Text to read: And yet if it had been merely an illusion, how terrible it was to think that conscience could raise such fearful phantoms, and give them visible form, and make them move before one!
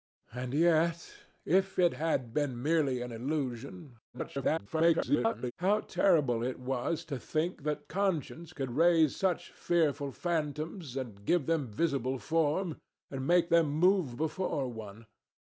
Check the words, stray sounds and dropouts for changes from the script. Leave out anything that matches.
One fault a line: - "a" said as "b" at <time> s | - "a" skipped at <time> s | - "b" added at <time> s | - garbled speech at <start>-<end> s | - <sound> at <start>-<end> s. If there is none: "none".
- garbled speech at 4.1-5.5 s